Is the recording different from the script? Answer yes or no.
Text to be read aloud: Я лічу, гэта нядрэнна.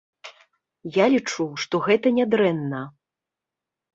yes